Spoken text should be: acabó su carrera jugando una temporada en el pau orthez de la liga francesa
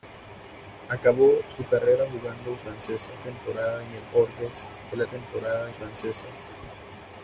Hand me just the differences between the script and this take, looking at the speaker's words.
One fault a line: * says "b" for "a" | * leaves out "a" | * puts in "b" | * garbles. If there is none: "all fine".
* says "francesa" for "una"
* leaves out "pau"
* says "temporada" for "liga"